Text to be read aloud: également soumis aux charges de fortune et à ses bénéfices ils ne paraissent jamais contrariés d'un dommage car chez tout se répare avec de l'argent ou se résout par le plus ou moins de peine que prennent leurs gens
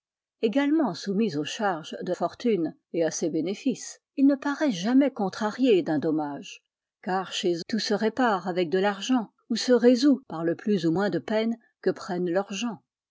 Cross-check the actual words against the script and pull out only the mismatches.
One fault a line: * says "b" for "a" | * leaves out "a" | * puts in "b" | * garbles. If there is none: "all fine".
all fine